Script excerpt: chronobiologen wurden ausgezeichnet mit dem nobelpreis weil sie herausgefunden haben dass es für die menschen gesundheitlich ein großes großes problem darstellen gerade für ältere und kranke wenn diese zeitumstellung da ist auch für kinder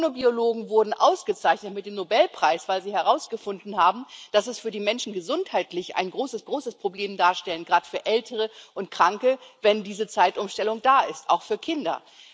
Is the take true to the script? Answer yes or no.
yes